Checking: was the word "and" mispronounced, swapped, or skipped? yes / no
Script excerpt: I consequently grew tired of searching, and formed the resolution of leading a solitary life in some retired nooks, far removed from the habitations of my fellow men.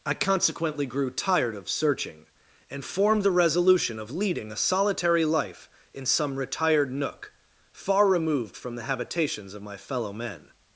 no